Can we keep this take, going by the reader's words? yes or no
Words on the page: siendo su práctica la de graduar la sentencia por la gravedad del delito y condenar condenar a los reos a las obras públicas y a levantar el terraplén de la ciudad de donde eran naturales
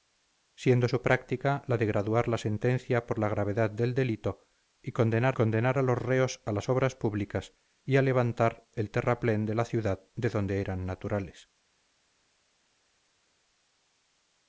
yes